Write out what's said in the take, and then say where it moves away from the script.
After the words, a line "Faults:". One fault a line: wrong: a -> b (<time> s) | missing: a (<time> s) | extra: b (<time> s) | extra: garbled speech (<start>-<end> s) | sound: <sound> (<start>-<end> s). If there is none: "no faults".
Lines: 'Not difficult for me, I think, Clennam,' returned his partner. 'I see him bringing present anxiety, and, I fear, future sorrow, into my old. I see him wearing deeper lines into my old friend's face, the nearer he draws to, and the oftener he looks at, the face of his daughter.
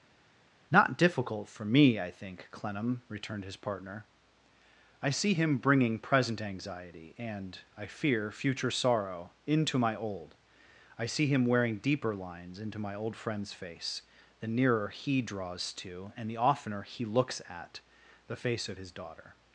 'Not difficult for me, I think, Clennam,' returned his partner. 'I see him bringing present anxiety, and, I fear, future sorrow, into my old. I see him wearing deeper lines into my old friend's face, the nearer he draws to, and the oftener he looks at, the face of his daughter.
Faults:
no faults